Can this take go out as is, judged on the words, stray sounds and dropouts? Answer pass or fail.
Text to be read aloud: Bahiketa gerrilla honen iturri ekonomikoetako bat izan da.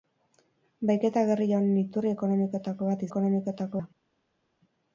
fail